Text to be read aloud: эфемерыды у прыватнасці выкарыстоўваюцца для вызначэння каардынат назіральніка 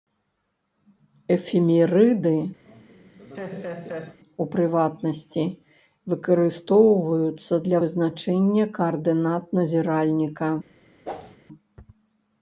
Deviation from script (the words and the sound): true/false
true